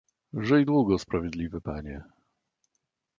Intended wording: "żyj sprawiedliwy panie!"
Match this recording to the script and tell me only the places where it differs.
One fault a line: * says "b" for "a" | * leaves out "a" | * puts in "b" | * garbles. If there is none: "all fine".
* puts in "długo"